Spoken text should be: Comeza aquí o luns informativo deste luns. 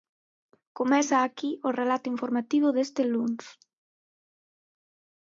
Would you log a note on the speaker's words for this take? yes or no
yes